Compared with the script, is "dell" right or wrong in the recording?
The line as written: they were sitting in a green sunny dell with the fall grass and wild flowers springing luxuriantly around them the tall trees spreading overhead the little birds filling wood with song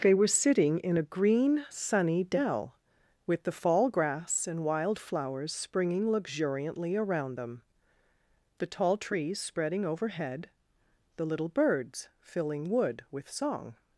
right